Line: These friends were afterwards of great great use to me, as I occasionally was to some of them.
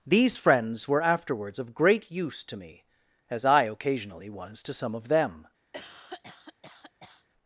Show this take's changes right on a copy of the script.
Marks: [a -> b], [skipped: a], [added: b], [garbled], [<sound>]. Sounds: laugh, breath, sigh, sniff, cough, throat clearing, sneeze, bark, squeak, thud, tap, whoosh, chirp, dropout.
These friends were afterwards of great [skipped: great] use to me, as I occasionally was to some of them. [cough]